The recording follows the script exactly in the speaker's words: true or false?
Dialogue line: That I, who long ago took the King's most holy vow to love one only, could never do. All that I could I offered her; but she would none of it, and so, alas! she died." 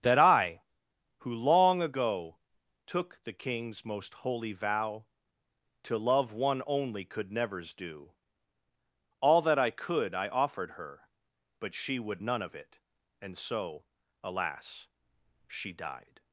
false